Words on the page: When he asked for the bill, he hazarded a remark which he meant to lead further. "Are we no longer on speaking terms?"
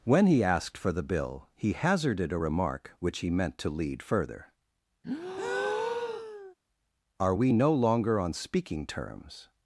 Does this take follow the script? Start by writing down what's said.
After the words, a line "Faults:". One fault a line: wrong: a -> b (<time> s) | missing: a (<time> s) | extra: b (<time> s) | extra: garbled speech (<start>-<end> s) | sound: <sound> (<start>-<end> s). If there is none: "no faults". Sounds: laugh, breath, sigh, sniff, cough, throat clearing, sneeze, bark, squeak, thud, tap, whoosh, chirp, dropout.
When he asked for the bill, he hazarded a remark which he meant to lead further. "Are we no longer on speaking terms?"
Faults:
sound: breath (5.0-6.5 s)